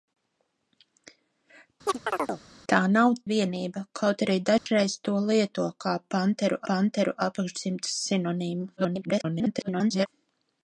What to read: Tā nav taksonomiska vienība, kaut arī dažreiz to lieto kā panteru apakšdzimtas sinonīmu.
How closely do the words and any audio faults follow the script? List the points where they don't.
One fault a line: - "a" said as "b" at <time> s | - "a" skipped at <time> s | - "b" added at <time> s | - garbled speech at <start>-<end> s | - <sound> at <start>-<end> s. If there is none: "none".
- chirp at 1.9-2.4 s
- "taksonomiska" skipped at 3.1 s
- dropout at 4.6-4.7 s
- "panteru" added at 6.7 s
- garbled speech at 8.8-10.1 s